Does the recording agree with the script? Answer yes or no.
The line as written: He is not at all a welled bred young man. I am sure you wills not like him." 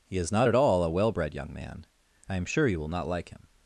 no